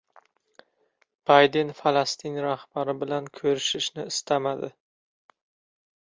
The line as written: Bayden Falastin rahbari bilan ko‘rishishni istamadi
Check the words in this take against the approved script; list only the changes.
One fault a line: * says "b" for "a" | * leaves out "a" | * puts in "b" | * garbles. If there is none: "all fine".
all fine